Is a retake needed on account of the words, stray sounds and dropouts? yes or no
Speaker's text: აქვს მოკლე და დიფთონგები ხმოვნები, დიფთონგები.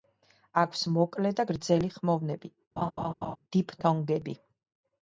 yes